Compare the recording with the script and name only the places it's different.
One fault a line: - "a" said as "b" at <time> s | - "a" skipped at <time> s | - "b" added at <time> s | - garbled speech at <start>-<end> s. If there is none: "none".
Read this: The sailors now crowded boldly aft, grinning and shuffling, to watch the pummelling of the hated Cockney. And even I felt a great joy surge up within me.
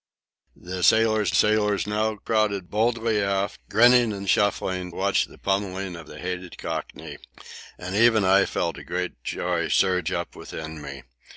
- "sailors" added at 1.3 s
- "to" skipped at 4.9 s